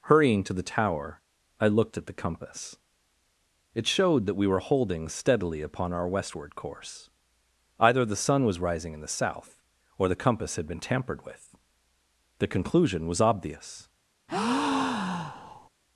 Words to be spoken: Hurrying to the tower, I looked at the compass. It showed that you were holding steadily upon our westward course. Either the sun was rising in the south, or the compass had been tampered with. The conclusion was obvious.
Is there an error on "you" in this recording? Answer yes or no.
yes